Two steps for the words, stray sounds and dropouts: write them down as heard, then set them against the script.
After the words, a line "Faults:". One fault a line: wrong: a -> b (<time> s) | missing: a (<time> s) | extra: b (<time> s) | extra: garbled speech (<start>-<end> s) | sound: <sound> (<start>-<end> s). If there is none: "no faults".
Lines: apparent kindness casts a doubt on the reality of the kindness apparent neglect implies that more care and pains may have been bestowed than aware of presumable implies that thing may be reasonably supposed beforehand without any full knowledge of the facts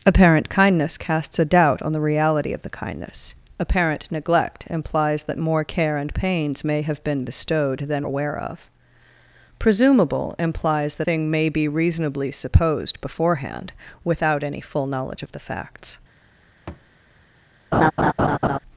apparent kindness casts a doubt on the reality of the kindness apparent neglect implies that more care and pains may have been bestowed than aware of presumable implies that thing may be reasonably supposed beforehand without any full knowledge of the facts
Faults:
sound: thud (16.7-16.9 s)
sound: laugh (17.7-18.6 s)